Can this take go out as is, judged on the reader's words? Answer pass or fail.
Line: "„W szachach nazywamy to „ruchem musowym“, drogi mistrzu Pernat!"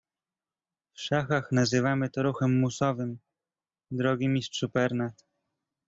pass